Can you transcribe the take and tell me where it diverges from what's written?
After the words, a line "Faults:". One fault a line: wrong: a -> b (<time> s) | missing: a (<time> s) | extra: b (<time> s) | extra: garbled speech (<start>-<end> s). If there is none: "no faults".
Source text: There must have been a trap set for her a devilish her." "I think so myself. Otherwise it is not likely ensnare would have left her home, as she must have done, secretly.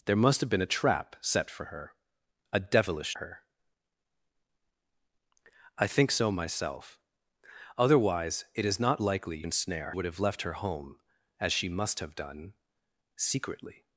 There must have been a trap set for her a devilish her." "I think so myself. Otherwise it is not likely ensnare would have left her home, as she must have done, secretly.
Faults:
no faults